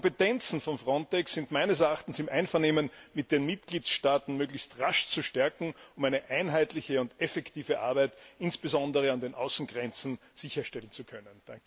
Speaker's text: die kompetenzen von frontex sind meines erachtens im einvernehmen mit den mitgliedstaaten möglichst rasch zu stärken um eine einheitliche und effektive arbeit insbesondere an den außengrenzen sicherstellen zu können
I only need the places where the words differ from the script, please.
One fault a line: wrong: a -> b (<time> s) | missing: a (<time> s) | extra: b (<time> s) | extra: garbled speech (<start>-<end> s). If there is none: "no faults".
no faults